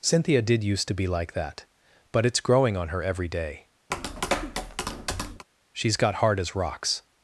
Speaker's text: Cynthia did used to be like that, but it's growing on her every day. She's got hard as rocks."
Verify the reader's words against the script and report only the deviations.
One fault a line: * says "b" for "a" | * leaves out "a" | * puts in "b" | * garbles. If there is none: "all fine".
all fine